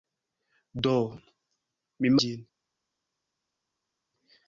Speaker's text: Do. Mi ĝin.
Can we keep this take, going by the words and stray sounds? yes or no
yes